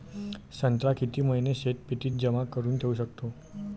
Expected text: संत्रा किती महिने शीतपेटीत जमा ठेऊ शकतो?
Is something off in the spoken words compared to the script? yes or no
yes